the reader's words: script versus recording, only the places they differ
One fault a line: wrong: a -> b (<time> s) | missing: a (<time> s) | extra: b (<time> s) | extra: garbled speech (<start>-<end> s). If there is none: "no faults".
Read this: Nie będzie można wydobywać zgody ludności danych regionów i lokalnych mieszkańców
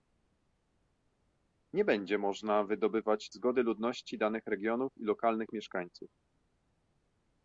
no faults